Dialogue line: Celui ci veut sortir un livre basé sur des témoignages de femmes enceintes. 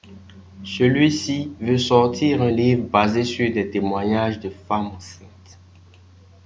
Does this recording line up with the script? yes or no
yes